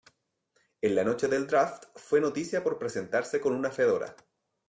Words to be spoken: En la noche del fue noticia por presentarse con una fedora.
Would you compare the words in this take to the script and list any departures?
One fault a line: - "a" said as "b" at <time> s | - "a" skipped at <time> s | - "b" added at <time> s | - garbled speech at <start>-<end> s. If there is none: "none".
- "draft" added at 1.4 s